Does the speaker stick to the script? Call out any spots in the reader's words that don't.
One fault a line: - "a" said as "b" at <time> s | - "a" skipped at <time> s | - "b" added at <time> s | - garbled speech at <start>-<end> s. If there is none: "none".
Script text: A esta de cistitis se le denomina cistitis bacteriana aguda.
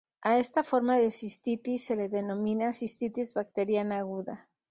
- "forma" added at 0.6 s